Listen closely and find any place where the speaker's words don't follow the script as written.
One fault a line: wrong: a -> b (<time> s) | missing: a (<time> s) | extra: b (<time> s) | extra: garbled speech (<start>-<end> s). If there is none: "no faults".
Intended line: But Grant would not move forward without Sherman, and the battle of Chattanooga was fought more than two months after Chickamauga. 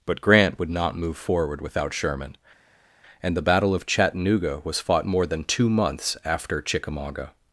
no faults